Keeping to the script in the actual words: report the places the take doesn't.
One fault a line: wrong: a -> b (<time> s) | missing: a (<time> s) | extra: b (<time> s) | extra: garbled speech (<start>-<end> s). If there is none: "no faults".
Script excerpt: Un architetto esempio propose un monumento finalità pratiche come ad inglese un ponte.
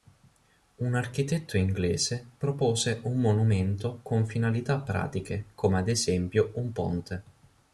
wrong: esempio -> inglese (1.6 s)
extra: con (4.0 s)
wrong: inglese -> esempio (5.9 s)